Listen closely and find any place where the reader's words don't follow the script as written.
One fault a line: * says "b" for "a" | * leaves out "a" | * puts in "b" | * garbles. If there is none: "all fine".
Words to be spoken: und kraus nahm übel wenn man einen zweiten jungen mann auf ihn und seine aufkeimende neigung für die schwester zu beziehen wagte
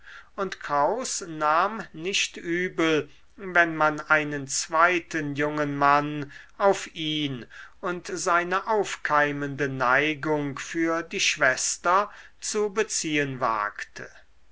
* puts in "nicht"